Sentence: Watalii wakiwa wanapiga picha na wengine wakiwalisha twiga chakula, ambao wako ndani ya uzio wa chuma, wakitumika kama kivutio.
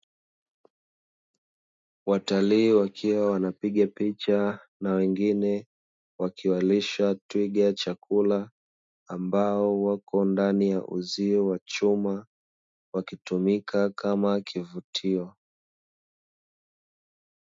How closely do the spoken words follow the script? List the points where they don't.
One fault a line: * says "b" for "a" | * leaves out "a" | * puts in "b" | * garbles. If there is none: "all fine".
all fine